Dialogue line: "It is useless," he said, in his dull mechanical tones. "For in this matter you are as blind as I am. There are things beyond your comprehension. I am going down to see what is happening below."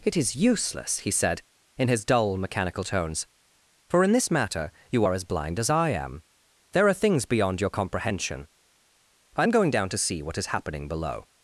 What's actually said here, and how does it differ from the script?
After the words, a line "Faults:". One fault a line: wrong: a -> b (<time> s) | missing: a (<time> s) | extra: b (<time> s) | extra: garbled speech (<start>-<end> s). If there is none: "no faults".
"It is useless," he said, in his dull mechanical tones. "For in this matter you are as blind as I am. There are things beyond your comprehension. I am going down to see what is happening below."
Faults:
no faults